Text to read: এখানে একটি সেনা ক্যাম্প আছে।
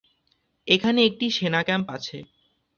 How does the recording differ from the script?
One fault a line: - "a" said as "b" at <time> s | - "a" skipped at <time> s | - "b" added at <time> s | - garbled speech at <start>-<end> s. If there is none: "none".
none